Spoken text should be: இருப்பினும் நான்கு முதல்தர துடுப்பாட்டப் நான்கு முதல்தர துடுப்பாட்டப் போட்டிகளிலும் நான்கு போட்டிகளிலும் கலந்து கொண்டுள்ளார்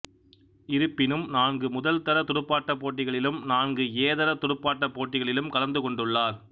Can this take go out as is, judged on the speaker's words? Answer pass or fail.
fail